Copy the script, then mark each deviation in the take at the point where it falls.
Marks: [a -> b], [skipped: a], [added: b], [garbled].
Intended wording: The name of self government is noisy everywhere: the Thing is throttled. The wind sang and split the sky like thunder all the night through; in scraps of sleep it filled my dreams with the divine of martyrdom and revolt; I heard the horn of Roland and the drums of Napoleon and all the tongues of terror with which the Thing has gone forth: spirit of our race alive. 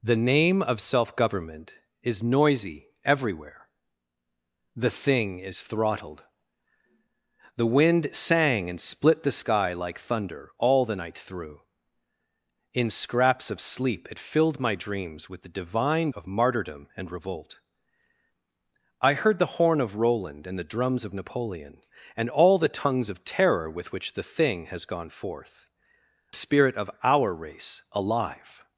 The name of self government is noisy everywhere: the Thing is throttled. The wind sang and split the sky like thunder all the night through; in scraps of sleep it filled my dreams with the divine of martyrdom and revolt; I heard the horn of Roland and the drums of Napoleon and all the tongues of terror with which the Thing has gone forth: spirit of our race alive.